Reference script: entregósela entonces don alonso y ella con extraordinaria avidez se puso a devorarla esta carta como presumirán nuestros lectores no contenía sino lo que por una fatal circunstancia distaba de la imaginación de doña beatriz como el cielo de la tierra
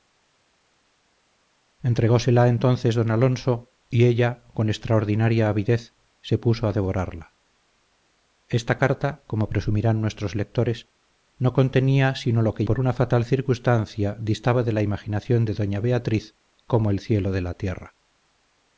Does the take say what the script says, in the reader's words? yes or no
yes